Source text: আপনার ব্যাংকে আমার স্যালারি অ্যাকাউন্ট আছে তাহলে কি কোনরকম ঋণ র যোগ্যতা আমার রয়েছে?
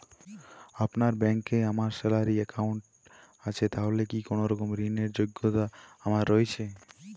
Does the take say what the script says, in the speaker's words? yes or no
yes